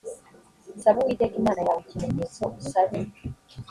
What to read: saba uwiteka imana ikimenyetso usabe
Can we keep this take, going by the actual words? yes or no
no